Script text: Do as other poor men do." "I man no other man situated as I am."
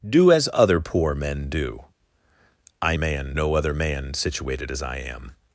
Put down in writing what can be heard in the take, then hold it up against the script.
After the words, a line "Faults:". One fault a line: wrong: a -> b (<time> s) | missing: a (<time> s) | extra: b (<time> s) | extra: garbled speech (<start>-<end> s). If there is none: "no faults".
Do as other poor men do." "I man no other man situated as I am."
Faults:
no faults